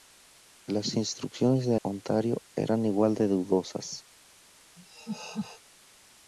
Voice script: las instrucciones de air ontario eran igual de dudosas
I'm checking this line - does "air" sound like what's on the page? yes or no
no